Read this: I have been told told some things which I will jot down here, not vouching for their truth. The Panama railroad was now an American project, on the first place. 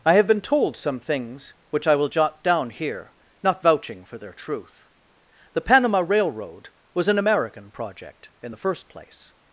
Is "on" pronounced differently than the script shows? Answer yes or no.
yes